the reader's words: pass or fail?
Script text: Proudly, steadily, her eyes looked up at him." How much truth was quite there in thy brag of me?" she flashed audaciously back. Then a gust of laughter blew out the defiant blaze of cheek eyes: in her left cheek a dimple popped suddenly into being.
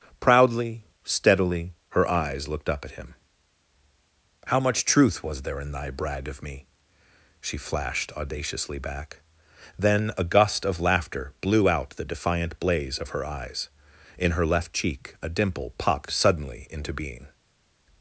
fail